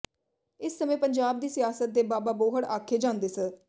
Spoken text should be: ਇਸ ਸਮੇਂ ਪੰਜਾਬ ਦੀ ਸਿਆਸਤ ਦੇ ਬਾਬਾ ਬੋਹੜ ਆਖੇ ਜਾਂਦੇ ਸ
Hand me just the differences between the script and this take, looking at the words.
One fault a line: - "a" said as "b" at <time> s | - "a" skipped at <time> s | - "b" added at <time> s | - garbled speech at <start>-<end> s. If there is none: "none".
none